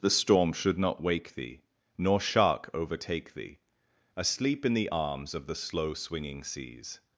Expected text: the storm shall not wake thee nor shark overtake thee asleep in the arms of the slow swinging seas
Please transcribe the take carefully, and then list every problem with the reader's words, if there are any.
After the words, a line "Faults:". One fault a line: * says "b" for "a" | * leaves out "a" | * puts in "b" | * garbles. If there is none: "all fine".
the storm should not wake thee nor shark overtake thee asleep in the arms of the slow swinging seas
Faults:
* says "should" for "shall"